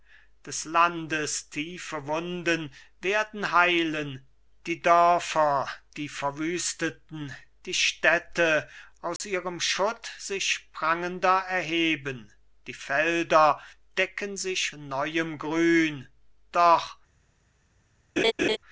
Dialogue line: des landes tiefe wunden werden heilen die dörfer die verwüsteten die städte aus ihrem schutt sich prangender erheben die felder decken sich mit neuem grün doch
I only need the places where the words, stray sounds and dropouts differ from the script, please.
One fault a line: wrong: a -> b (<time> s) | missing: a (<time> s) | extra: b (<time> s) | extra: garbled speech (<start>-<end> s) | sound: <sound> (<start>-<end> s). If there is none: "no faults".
sound: dropout (9.2-9.2 s)
missing: mit (14.7 s)
sound: laugh (18.2-18.6 s)